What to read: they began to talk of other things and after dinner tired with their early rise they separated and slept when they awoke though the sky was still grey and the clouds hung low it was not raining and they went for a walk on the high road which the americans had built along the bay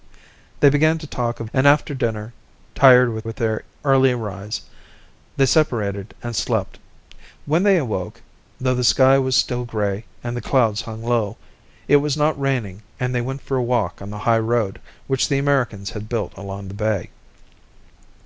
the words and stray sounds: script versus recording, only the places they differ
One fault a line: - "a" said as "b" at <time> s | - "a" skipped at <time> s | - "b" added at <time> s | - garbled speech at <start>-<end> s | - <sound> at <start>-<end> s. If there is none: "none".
- "other things" skipped at 1.5 s
- "with" added at 3.2 s